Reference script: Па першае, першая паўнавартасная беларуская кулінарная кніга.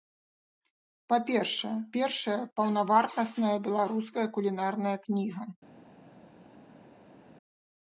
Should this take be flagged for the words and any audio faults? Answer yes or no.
no